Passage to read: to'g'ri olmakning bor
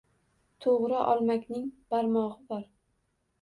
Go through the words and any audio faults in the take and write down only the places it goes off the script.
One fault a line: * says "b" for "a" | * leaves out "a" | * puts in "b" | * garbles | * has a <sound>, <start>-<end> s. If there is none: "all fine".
* puts in "barmog'i"